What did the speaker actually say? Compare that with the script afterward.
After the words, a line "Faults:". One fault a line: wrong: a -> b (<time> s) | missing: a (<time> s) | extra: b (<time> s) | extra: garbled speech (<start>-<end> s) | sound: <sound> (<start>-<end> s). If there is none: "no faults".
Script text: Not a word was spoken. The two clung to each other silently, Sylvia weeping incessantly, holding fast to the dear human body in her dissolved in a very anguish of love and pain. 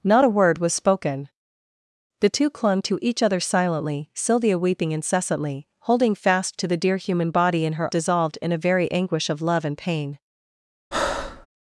Not a word was spoken. The two clung to each other silently, Sylvia weeping incessantly, holding fast to the dear human body in her dissolved in a very anguish of love and pain.
Faults:
sound: breath (10.9-11.5 s)